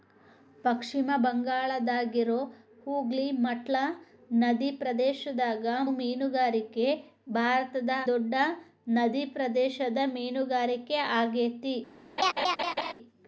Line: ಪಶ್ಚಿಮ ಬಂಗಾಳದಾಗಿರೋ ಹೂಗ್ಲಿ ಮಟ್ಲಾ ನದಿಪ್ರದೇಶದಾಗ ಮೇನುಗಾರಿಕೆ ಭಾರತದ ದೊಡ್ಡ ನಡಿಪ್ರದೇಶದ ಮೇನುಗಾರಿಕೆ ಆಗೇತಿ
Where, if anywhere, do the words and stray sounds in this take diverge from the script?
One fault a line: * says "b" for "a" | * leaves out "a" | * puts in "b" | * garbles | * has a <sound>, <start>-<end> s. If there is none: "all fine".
* has a laugh, 12.2-12.9 s